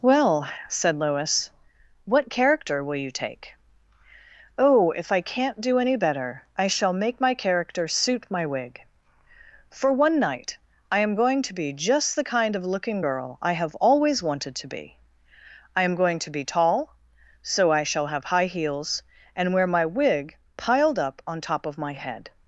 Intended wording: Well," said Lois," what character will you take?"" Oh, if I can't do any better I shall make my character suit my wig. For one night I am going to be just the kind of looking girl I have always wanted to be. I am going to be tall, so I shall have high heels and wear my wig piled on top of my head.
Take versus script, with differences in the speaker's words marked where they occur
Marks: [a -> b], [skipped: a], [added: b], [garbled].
Well," said Lois," what character will you take?"" Oh, if I can't do any better I shall make my character suit my wig. For one night I am going to be just the kind of looking girl I have always wanted to be. I am going to be tall, so I shall have high heels and wear my wig piled [added: up] on top of my head.